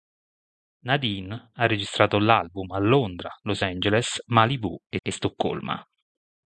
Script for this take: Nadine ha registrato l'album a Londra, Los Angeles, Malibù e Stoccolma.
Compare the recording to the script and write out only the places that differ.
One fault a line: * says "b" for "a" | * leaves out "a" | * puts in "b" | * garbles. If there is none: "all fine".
* puts in "e"